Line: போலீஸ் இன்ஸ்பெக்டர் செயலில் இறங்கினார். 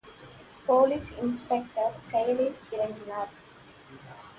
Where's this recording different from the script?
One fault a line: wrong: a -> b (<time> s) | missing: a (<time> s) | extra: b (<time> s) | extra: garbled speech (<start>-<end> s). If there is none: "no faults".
no faults